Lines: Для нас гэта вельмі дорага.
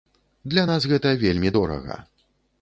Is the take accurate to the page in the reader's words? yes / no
yes